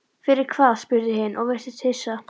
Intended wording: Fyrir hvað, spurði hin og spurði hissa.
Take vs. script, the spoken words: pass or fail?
fail